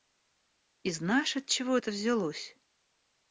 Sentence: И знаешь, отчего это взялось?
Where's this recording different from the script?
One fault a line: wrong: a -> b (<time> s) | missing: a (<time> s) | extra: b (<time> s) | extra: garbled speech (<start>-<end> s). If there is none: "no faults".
no faults